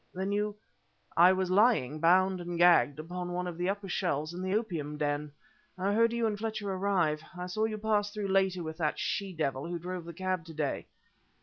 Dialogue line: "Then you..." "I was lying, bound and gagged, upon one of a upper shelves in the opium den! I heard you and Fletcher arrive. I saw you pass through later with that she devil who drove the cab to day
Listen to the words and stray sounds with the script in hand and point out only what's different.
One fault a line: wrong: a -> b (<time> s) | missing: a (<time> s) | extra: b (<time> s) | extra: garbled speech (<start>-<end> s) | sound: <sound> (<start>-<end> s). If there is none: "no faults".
wrong: a -> the (3.6 s)